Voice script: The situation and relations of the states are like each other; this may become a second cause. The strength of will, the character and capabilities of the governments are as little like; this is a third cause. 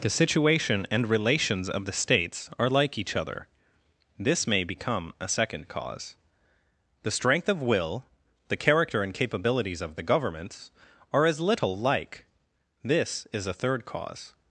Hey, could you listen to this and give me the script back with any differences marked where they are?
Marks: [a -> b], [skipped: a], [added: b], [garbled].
The situation and relations of the states are like each other; this may become a second cause. The strength of will, the character and capabilities of the governments are as little like; this is a third cause.